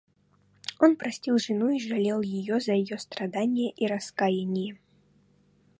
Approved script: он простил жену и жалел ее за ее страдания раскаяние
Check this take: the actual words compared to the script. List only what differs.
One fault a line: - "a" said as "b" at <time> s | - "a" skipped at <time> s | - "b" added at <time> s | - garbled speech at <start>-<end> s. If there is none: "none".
- "и" added at 3.7 s